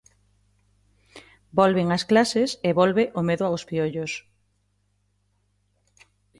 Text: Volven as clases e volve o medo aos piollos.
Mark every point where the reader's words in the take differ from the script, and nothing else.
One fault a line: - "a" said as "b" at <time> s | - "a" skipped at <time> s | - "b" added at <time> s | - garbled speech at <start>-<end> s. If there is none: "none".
none